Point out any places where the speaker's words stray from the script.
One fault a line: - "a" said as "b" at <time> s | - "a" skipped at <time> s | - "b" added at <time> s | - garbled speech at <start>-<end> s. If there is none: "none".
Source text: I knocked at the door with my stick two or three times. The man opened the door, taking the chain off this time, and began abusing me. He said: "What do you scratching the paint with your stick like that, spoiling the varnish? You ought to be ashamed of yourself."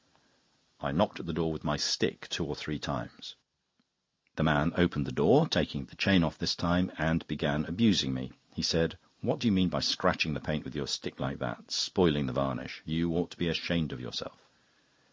- "mean by" added at 9.5 s